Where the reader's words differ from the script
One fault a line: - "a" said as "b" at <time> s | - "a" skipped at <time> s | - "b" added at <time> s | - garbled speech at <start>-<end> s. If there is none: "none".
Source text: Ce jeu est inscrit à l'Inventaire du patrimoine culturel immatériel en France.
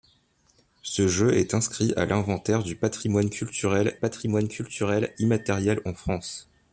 - "patrimoine culturel" added at 4.0 s